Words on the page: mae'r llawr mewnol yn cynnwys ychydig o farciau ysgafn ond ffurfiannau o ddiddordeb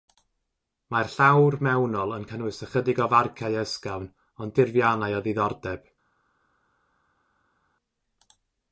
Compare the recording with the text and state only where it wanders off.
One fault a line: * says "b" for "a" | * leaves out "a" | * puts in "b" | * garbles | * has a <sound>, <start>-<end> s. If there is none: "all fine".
all fine